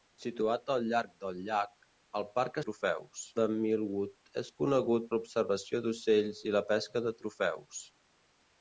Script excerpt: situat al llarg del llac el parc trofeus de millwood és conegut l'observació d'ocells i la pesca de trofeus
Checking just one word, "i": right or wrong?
right